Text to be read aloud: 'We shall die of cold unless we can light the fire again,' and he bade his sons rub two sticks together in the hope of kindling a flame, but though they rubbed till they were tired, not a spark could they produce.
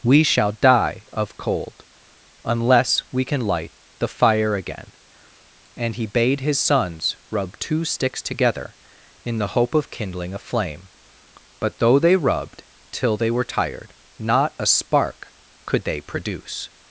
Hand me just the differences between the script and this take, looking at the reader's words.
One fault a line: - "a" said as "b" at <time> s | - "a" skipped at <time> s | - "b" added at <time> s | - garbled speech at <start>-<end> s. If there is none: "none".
none